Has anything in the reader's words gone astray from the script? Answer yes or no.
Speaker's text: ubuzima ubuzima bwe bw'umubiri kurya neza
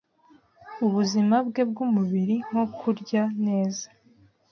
yes